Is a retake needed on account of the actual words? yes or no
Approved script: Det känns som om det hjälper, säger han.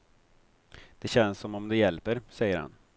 no